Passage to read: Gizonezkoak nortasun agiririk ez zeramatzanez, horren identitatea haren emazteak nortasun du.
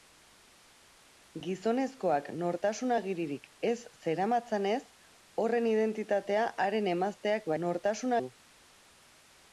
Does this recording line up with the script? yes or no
yes